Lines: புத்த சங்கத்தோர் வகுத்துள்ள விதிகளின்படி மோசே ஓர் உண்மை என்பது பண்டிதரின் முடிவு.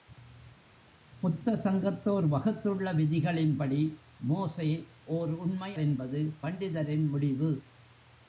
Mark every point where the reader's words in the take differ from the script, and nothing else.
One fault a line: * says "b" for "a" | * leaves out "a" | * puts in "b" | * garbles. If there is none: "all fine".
all fine